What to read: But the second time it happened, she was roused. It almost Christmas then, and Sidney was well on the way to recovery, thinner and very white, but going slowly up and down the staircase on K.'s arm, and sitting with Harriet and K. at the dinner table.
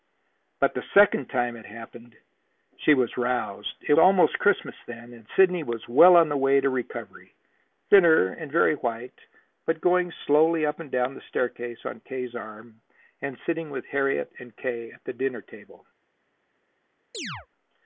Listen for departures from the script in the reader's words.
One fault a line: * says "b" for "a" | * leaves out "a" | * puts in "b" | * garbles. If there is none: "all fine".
all fine